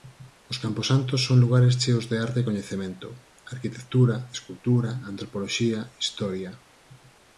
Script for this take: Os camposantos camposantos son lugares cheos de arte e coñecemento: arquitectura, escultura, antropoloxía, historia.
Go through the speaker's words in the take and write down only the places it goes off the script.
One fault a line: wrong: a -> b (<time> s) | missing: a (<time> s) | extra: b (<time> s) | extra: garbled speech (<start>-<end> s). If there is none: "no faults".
missing: camposantos (1.2 s)